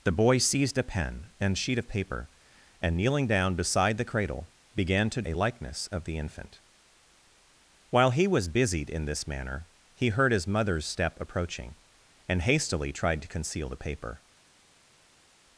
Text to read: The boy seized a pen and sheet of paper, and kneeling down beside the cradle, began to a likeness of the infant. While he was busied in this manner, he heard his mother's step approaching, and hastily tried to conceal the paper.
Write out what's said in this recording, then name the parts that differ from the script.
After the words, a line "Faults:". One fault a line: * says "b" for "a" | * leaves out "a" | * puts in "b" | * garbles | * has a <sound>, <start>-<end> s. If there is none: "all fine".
The boy seized a pen and sheet of paper, and kneeling down beside the cradle, began to a likeness of the infant. While he was busied in this manner, he heard his mother's step approaching, and hastily tried to conceal the paper.
Faults:
all fine